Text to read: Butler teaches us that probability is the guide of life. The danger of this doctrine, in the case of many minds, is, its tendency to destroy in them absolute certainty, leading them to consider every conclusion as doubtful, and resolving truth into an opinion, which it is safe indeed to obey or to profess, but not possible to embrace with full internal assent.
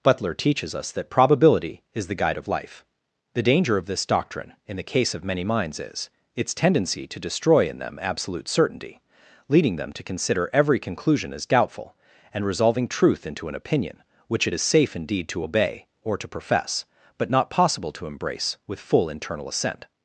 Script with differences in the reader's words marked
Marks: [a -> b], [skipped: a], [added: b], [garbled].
Butler teaches us that probability is the guide of life. The danger of this doctrine, in the case of many minds, is, its tendency to destroy in them absolute certainty, leading them to consider every conclusion as doubtful, and resolving truth into an opinion, which it is safe indeed to obey or to profess, but not possible to embrace with full internal assent.